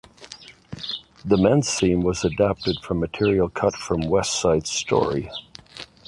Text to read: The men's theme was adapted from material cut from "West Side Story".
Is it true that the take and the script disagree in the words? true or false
false